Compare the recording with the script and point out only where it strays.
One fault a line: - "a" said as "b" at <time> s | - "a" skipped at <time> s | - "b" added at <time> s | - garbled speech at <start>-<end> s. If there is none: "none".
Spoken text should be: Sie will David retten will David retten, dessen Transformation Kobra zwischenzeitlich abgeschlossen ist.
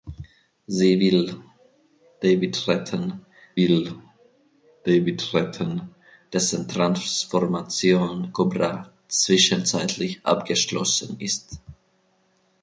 none